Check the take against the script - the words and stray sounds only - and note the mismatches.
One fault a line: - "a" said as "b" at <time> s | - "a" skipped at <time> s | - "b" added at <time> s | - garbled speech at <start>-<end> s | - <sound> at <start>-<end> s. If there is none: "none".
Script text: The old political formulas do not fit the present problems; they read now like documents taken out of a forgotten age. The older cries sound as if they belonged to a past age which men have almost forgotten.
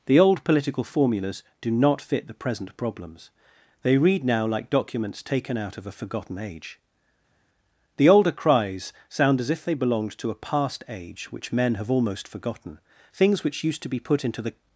- "Things which used to be put into the" added at 13.1 s